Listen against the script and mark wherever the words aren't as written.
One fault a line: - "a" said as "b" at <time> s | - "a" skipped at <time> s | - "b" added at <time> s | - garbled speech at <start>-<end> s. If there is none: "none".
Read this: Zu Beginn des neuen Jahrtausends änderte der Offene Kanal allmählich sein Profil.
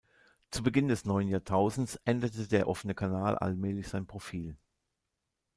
none